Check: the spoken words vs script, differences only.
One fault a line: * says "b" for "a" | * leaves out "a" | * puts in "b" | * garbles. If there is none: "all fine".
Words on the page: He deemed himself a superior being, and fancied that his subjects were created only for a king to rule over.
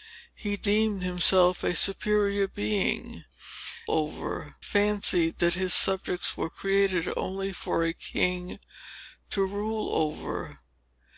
* says "over" for "and"